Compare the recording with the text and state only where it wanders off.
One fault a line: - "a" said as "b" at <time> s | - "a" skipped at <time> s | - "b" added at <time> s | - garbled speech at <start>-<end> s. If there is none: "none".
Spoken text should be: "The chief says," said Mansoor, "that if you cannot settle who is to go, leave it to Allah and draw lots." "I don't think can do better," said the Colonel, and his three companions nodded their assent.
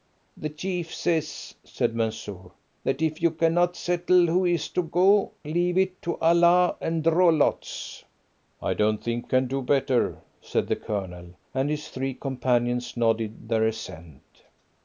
none